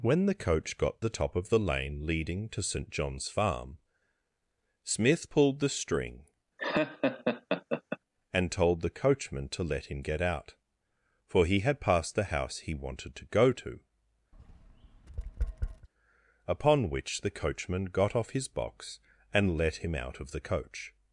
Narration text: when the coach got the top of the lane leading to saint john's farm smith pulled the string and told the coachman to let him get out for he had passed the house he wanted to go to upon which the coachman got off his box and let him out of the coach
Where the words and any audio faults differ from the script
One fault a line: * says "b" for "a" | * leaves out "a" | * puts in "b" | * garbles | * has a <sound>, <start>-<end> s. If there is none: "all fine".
* has a laugh, 6.6-8.0 s
* has a tap, 14.3-15.9 s